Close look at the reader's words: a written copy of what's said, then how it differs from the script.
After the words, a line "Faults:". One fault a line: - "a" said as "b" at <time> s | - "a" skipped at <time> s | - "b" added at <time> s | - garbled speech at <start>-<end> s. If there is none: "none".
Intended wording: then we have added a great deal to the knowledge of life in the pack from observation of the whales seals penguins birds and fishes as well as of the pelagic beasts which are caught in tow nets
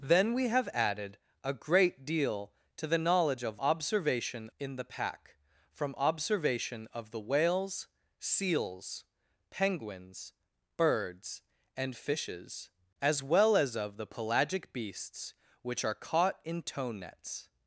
then we have added a great deal to the knowledge of observation in the pack from observation of the whales seals penguins birds and fishes as well as of the pelagic beasts which are caught in tow nets
Faults:
- "life" said as "observation" at 3.6 s